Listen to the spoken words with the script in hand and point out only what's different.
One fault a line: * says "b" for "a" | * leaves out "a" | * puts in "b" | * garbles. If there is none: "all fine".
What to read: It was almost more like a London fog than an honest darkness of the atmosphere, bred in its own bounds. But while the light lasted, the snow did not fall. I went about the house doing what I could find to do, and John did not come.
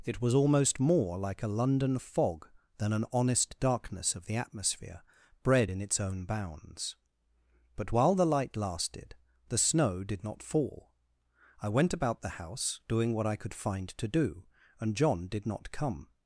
all fine